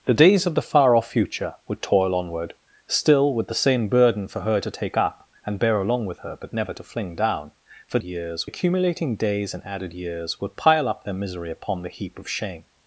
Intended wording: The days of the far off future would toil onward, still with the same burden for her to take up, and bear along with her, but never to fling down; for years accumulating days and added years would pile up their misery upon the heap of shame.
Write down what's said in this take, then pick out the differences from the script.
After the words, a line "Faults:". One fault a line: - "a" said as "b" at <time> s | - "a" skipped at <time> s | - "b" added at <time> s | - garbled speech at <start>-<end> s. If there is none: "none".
The days of the far off future would toil onward, still with the same burden for her to take up, and bear along with her, but never to fling down; for years accumulating days and added years would pile up their misery upon the heap of shame.
Faults:
none